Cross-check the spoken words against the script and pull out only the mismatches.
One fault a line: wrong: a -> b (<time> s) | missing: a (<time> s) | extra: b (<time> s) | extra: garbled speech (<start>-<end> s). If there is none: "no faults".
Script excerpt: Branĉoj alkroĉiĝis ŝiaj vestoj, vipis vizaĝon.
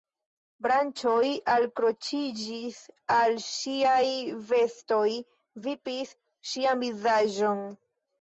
extra: al (3.2 s)
extra: ŝian (6.5 s)